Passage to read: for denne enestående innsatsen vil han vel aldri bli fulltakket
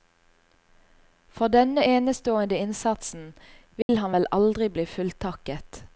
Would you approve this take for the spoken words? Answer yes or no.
yes